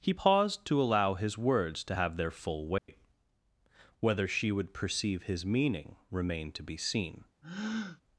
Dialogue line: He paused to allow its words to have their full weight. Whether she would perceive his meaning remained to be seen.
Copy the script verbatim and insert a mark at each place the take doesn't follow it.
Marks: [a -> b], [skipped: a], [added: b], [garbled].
He paused to allow [its -> his] words to have their full weight. Whether she would perceive his meaning remained to be seen.